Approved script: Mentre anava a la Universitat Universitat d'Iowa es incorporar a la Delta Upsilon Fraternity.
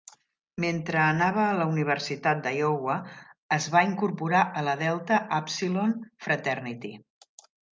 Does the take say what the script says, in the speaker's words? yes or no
no